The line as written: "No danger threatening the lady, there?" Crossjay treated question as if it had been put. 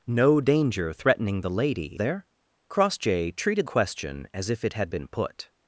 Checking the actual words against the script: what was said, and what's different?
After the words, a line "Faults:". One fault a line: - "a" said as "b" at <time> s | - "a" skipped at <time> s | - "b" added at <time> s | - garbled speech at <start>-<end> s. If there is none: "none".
"No danger threatening the lady, there?" Crossjay treated question as if it had been put.
Faults:
none